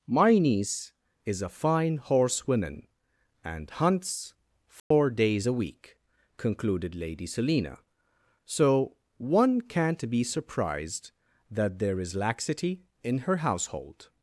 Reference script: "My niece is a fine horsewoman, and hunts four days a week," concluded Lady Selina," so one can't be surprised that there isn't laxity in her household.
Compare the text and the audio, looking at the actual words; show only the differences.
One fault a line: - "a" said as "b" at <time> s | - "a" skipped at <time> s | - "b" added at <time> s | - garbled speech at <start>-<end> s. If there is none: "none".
- "isn't" said as "is" at 12.0 s